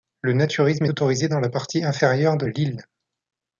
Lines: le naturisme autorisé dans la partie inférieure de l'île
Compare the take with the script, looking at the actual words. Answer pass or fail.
pass